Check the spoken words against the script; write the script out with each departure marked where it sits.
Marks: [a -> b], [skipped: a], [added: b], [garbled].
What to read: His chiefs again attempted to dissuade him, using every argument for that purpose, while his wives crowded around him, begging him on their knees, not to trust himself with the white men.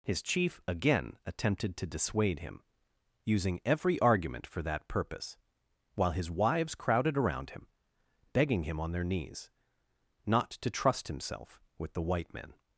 His [chiefs -> chief] again attempted to dissuade him, using every argument for that purpose, while his wives crowded around him, begging him on their knees, not to trust himself with the white men.